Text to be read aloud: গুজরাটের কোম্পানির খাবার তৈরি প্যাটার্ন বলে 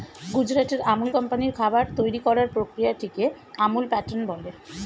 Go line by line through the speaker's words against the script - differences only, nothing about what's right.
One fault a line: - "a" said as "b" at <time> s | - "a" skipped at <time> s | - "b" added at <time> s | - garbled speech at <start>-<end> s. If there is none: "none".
- "আমুল" added at 0.9 s
- "করার প্রক্রিয়াটিকে আমুল" added at 2.3 s